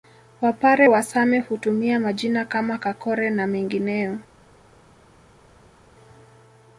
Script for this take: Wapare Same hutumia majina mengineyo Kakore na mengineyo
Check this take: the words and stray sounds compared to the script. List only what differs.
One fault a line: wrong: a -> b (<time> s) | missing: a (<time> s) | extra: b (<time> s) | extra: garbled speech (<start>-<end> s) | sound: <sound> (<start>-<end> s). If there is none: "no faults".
extra: wa (0.9 s)
wrong: mengineyo -> kama (2.5 s)